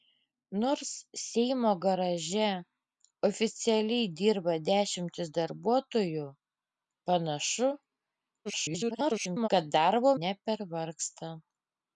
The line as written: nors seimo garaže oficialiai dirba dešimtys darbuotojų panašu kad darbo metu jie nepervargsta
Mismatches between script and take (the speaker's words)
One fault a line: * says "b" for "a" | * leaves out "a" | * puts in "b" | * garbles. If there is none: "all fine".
* garbles
* leaves out "metu jie"